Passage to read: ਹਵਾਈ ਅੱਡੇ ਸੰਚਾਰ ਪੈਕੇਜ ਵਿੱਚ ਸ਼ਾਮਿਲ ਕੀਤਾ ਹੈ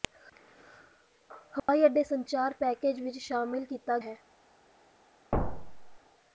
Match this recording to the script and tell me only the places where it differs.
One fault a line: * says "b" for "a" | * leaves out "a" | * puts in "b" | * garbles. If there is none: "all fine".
all fine